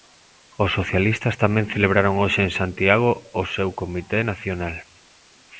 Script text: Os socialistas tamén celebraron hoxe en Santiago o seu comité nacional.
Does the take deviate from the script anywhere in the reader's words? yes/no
no